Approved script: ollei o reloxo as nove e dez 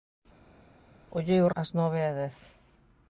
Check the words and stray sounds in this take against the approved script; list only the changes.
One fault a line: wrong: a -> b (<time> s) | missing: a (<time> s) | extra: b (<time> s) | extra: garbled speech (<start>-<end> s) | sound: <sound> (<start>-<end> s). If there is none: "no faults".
missing: reloxo (1.5 s)